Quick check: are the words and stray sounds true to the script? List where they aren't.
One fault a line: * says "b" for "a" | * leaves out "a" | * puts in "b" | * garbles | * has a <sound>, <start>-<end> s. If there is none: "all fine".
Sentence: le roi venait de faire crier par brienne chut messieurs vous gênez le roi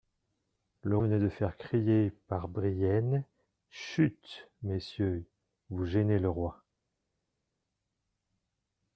* leaves out "roi"